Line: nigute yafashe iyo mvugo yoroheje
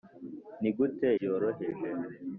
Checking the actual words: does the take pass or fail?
fail